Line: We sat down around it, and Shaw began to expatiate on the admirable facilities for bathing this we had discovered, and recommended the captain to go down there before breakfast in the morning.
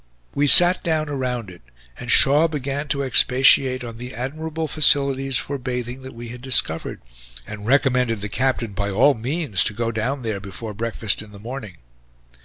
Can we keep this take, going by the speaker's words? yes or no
no